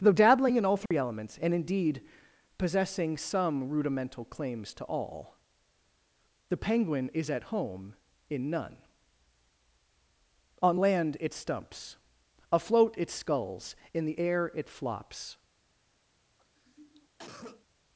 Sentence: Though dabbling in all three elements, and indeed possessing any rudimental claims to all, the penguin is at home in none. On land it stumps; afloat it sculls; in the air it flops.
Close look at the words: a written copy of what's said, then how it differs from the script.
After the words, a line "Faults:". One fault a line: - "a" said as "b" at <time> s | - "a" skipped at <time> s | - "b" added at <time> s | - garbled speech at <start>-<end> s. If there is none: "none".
Though dabbling in all three elements, and indeed possessing some rudimental claims to all, the penguin is at home in none. On land it stumps; afloat it sculls; in the air it flops.
Faults:
- "any" said as "some" at 3.2 s